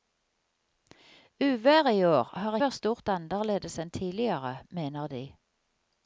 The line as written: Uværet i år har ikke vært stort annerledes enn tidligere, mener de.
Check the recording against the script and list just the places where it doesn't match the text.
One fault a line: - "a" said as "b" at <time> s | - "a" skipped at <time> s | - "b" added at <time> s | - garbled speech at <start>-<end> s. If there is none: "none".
- "ikke" skipped at 2.6 s